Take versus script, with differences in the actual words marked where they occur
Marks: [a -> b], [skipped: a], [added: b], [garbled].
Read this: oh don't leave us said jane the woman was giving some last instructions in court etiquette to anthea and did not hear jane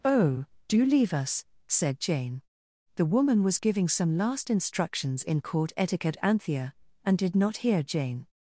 oh [don't -> do] leave us said jane the woman was giving some last instructions in court etiquette [skipped: to] anthea and did not hear jane